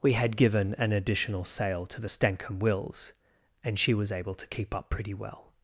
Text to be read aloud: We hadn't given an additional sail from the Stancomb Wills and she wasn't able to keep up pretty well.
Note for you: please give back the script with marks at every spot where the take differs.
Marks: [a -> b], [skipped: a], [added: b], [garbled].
We [hadn't -> had] given an additional sail [from -> to] the Stancomb Wills and she [wasn't -> was] able to keep up pretty well.